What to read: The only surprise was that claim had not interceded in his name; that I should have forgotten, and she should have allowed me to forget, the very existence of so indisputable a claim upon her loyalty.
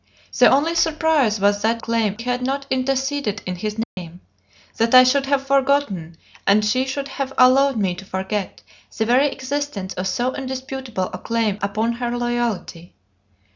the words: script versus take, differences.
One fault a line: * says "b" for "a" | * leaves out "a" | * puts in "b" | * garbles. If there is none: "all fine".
all fine